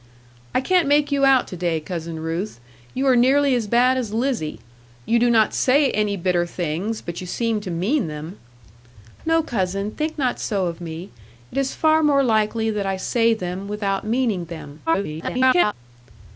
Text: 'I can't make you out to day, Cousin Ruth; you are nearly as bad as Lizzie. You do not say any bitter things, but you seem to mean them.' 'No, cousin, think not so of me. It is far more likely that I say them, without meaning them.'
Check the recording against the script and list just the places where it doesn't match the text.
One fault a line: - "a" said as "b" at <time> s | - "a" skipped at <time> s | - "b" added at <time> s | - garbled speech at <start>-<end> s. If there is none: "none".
- garbled speech at 14.9-15.7 s